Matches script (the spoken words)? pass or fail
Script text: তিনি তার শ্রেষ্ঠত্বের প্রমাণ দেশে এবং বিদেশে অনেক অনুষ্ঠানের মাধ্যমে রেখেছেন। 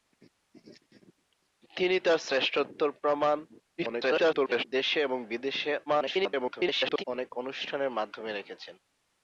fail